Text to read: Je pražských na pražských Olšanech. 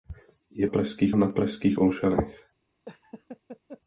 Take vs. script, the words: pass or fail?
pass